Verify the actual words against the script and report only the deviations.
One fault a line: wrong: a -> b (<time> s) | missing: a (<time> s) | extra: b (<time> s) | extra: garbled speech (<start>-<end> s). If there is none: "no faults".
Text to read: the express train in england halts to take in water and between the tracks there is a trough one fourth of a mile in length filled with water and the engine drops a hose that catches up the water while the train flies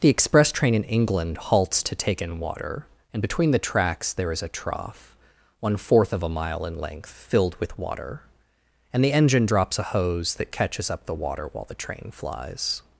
no faults